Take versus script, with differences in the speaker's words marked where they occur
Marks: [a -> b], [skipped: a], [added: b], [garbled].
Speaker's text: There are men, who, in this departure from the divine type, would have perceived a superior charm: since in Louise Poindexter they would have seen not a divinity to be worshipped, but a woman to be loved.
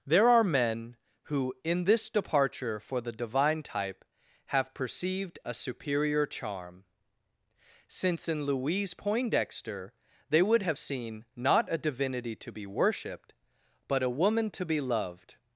There are men, who, in this departure [from -> for] the divine type, [skipped: would] have perceived a superior charm: since in Louise Poindexter they would have seen not a divinity to be worshipped, but a woman to be loved.